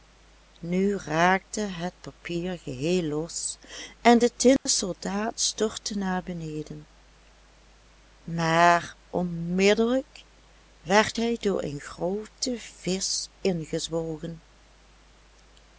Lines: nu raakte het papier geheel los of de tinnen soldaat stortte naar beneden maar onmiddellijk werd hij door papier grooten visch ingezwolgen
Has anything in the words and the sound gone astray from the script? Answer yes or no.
yes